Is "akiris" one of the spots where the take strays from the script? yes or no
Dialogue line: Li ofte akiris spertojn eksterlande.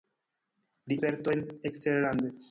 yes